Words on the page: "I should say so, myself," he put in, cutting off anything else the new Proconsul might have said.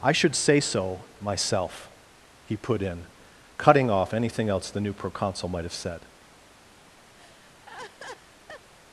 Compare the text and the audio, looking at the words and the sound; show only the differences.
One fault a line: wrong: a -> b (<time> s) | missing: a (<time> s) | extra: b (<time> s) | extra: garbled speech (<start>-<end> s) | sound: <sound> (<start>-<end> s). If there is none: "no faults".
sound: laugh (7.2-8.7 s)